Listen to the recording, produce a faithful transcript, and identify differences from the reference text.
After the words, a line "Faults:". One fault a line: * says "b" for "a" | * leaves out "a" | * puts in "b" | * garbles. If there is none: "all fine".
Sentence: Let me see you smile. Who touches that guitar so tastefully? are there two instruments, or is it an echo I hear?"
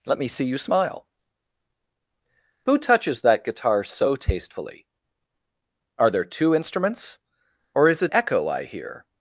Let me see you smile. Who touches that guitar so tastefully? are there two instruments, or is it echo I hear?"
Faults:
* leaves out "an"